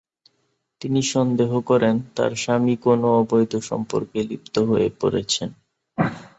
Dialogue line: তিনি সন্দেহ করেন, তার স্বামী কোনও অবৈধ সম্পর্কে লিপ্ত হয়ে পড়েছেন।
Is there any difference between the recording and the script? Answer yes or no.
no